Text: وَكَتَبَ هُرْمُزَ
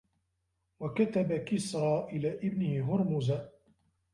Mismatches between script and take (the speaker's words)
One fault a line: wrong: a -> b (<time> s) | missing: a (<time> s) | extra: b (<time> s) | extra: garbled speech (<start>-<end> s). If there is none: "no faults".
extra: كِسْرَى إلَى ابْنِهِ (1.3 s)